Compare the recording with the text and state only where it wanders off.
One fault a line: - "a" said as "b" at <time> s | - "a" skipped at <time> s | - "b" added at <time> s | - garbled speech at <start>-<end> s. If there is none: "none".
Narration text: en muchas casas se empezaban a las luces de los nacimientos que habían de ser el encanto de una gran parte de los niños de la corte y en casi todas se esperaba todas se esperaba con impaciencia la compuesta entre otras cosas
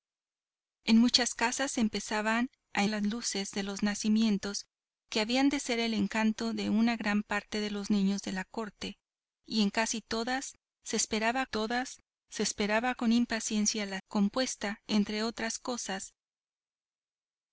none